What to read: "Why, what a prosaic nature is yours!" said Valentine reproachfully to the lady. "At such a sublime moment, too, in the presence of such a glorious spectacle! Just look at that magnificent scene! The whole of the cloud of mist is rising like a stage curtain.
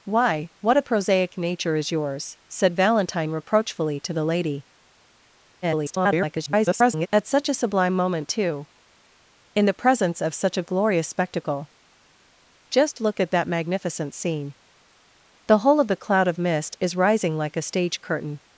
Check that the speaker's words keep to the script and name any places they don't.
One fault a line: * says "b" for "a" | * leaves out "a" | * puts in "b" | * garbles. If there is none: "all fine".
* garbles